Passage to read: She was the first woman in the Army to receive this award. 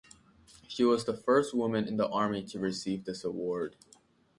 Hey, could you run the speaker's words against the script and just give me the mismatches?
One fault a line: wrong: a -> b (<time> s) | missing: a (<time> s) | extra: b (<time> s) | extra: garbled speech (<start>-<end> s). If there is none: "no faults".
no faults